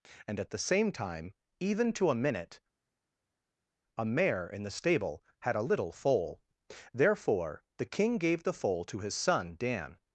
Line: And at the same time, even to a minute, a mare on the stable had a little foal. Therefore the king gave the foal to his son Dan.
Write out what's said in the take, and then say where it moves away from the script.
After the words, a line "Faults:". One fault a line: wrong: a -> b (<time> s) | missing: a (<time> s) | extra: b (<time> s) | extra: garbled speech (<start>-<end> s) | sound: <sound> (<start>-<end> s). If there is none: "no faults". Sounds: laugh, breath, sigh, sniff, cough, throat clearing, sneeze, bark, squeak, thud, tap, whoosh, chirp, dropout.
And at the same time, even to a minute, a mare in the stable had a little foal. Therefore the king gave the foal to his son Dan.
Faults:
wrong: on -> in (4.5 s)